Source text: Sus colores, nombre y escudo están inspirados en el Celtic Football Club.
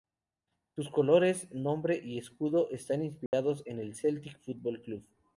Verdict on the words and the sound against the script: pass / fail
fail